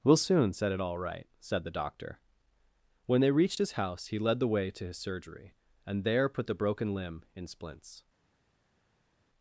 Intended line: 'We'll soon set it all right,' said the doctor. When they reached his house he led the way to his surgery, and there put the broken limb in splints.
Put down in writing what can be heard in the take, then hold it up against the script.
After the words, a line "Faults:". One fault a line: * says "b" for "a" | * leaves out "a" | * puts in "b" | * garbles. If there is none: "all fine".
'We'll soon set it all right,' said the doctor. When they reached his house he led the way to his surgery, and there put the broken limb in splints.
Faults:
all fine